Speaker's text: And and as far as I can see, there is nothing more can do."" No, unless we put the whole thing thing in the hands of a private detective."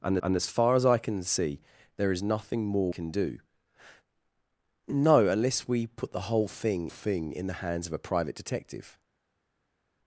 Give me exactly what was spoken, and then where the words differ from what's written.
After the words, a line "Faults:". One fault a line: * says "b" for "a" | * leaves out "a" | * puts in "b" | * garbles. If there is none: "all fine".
And and as far as I can see, there is nothing more can do."" No, unless we put the whole thing thing in the hands of a private detective."
Faults:
all fine